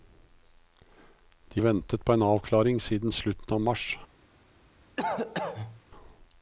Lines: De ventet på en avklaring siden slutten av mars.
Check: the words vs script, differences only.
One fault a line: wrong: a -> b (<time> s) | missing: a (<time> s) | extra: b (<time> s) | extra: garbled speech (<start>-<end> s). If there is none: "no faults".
no faults